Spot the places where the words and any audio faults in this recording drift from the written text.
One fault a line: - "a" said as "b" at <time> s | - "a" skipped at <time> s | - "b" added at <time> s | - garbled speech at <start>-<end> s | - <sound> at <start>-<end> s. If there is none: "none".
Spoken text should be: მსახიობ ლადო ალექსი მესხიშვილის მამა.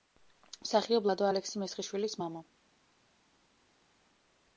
none